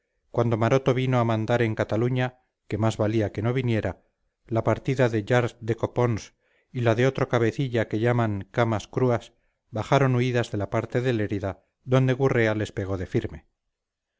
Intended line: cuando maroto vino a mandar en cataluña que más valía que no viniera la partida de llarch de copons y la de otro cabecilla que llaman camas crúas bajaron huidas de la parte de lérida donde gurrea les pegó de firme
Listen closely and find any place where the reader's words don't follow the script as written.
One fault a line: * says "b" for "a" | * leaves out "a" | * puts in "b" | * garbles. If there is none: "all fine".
all fine